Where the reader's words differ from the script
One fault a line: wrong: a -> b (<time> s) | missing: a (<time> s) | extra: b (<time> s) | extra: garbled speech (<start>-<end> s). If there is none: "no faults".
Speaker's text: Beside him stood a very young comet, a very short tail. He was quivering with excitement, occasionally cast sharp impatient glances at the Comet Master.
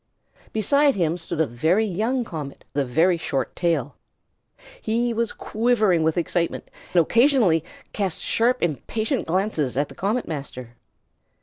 no faults